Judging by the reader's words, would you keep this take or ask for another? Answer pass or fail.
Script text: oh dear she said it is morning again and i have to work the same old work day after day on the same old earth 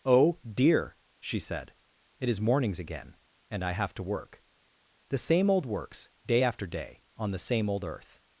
fail